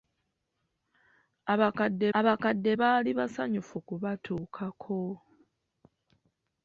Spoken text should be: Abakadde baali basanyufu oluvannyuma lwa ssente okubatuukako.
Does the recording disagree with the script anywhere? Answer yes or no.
yes